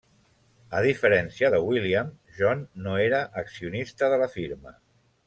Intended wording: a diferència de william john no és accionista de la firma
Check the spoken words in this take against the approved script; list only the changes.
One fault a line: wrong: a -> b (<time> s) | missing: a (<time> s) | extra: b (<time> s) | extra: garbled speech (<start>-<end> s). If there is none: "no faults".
wrong: és -> era (3.1 s)